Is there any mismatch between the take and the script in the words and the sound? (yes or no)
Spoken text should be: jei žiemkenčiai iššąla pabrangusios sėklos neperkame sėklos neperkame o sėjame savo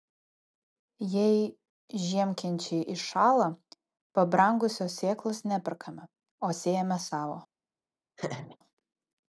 yes